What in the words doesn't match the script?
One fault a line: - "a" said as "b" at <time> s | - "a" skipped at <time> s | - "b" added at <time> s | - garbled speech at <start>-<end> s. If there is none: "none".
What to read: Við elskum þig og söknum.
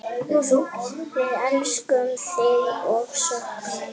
none